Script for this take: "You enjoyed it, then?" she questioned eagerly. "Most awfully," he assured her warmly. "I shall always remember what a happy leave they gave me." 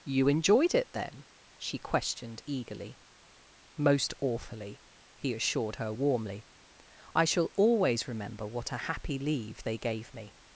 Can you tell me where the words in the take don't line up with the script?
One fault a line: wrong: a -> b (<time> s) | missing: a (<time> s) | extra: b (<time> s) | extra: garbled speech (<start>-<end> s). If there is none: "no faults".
no faults